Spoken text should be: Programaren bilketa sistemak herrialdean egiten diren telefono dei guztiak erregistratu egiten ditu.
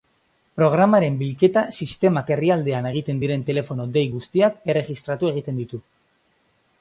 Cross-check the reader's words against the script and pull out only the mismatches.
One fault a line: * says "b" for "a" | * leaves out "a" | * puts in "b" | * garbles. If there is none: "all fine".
all fine